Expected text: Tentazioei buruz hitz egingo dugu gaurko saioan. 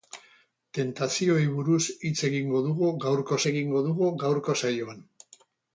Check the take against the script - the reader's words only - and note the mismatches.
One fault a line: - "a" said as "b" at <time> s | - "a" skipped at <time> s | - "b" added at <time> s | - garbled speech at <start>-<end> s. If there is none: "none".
- "egingo dugu gaurko" added at 3.5 s